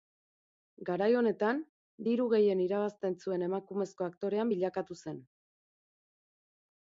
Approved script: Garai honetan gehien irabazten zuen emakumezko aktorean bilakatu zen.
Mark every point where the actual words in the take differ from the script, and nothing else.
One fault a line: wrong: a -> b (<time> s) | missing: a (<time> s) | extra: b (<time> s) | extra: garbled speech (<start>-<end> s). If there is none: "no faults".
extra: diru (2.1 s)